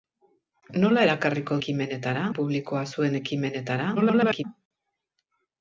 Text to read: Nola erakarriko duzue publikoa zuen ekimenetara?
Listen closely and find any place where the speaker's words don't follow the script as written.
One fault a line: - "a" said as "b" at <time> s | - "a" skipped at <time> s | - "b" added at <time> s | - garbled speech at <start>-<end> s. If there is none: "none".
- "duzue" said as "ekimenetara" at 1.6 s
- garbled speech at 4.0-4.4 s